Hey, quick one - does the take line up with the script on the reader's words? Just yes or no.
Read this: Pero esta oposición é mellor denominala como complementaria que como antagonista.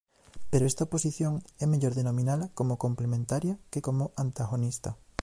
yes